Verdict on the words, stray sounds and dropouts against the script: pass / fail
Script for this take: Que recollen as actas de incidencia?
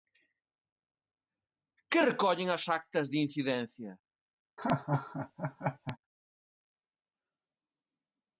fail